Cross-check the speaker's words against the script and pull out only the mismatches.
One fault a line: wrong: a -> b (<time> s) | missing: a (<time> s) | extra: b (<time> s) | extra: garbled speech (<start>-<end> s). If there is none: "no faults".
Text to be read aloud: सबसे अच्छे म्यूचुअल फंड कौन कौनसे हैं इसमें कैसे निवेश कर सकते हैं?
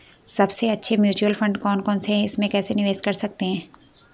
no faults